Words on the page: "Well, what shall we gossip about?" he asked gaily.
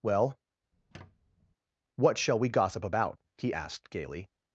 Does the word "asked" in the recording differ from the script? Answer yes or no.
no